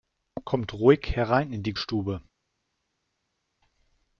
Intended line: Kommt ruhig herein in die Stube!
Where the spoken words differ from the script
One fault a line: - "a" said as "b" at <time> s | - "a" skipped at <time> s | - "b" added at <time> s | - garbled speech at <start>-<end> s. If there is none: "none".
none